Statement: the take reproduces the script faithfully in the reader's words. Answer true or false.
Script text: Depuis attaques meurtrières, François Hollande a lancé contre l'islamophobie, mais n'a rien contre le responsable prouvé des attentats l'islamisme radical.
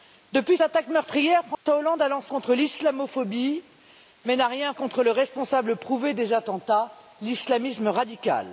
true